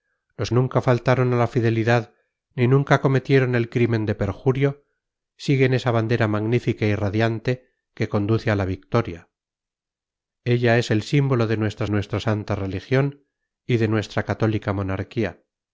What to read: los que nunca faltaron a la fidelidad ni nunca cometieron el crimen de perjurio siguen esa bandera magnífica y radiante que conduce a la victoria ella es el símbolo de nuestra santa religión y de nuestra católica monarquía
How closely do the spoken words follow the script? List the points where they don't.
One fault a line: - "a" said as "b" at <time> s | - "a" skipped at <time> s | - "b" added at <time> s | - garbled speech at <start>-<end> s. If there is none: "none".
- "que" skipped at 0.5 s
- "nuestra" added at 11.9 s